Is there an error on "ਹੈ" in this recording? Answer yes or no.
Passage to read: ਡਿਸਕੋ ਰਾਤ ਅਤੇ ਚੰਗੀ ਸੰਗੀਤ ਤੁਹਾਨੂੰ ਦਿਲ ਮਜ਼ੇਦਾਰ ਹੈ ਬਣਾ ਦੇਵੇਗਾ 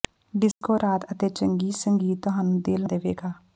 yes